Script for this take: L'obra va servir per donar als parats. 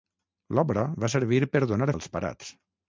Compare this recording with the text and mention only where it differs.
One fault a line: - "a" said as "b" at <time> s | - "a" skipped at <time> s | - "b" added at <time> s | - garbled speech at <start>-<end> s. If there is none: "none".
none